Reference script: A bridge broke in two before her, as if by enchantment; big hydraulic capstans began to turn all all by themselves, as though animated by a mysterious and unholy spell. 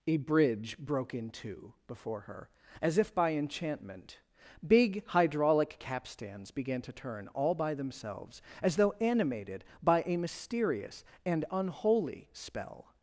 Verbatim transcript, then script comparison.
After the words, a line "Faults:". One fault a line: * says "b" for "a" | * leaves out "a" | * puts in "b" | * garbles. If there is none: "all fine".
A bridge broke in two before her, as if by enchantment; big hydraulic capstans began to turn all by themselves, as though animated by a mysterious and unholy spell.
Faults:
* leaves out "all"